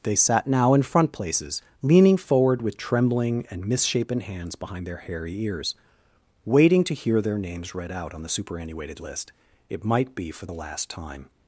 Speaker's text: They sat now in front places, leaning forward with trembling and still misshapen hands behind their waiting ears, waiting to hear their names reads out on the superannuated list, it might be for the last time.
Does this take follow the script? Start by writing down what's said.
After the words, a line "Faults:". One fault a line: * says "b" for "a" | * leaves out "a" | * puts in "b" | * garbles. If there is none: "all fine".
They sat now in front places, leaning forward with trembling and misshapen hands behind their hairy ears, waiting to hear their names read out on the superannuated list, it might be for the last time.
Faults:
* leaves out "still"
* says "hairy" for "waiting"
* says "read" for "reads"